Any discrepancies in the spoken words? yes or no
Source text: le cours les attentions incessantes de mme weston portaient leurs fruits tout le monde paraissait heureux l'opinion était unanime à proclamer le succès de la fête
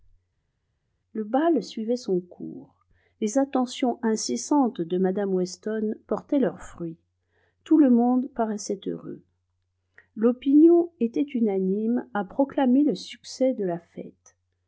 yes